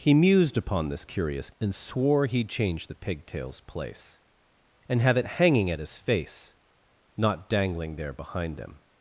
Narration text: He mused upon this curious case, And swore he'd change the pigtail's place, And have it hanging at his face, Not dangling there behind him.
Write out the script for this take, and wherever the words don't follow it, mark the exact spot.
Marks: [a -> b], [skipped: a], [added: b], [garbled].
He mused upon this curious [skipped: case,] And swore he'd change the pigtail's place, And have it hanging at his face, Not dangling there behind him.